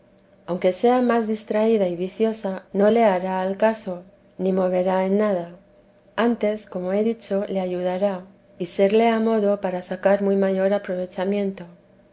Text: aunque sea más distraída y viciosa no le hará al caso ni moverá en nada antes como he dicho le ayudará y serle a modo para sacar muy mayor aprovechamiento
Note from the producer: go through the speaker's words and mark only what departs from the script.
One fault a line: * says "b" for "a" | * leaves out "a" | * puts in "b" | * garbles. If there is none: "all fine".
all fine